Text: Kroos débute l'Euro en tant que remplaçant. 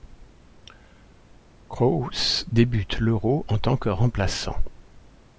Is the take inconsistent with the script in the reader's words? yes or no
no